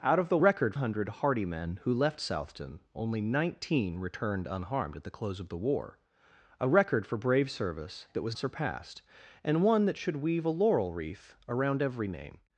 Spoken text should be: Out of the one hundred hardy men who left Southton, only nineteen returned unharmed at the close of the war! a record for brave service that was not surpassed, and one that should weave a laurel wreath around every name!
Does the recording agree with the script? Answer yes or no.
no